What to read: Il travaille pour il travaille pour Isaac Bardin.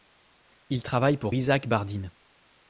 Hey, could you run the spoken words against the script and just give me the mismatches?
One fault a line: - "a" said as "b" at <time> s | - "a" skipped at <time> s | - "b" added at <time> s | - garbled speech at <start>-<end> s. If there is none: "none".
- "il travaille pour" skipped at 1.4 s